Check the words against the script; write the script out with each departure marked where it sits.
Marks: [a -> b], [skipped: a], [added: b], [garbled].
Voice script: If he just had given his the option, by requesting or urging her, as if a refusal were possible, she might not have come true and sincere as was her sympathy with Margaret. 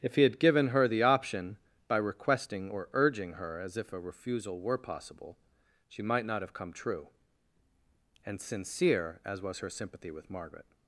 If he [skipped: just] had given [his -> her] the option, by requesting or urging her, as if a refusal were possible, she might not have come true and sincere as was her sympathy with Margaret.